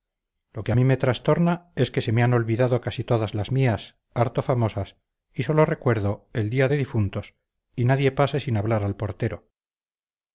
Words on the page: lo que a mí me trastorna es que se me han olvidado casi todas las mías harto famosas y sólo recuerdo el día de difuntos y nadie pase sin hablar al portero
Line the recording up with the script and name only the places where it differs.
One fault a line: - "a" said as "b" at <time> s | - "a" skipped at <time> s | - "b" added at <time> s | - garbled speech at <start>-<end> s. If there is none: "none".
none